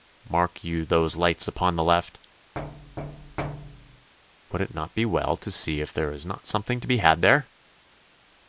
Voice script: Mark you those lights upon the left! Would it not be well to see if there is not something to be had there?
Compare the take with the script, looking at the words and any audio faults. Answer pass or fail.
fail